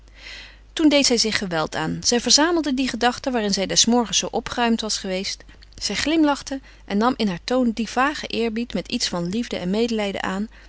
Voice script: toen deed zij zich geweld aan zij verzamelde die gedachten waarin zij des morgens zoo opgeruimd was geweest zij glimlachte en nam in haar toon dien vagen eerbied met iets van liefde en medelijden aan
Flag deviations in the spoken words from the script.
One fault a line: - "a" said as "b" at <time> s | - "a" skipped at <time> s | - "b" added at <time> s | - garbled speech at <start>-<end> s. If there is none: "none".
none